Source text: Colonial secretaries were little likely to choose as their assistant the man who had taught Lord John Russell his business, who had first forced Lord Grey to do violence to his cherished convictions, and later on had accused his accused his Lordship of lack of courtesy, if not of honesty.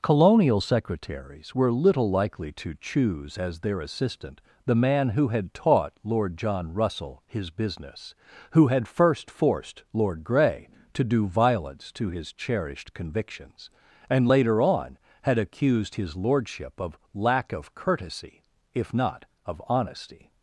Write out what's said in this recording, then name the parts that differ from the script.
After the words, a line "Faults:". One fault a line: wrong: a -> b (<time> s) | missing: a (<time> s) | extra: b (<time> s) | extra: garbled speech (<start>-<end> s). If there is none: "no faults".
Colonial secretaries were little likely to choose as their assistant the man who had taught Lord John Russell his business, who had first forced Lord Grey to do violence to his cherished convictions, and later on had accused his Lordship of lack of courtesy, if not of honesty.
Faults:
missing: accused his (16.1 s)